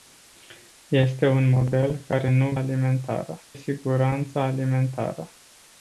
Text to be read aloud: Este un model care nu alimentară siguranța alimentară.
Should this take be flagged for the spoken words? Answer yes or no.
no